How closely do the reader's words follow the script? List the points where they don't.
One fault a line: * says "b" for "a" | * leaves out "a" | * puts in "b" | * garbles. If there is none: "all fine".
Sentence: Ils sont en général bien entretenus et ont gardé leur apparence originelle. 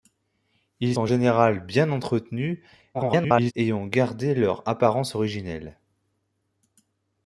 * leaves out "sont"
* garbles